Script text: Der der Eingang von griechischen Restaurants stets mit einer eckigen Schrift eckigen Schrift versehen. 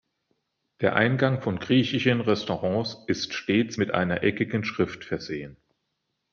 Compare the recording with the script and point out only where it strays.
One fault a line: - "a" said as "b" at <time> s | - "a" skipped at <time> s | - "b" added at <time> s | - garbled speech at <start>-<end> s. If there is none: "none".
- "der" skipped at 0.9 s
- "ist" added at 3.0 s
- "eckigen Schrift" skipped at 5.0 s